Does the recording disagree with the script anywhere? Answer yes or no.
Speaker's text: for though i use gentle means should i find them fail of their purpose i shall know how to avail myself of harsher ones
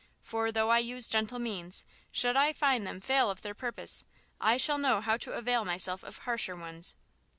no